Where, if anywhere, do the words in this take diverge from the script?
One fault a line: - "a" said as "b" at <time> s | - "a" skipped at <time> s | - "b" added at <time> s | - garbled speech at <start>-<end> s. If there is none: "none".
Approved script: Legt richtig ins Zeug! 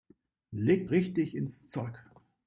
none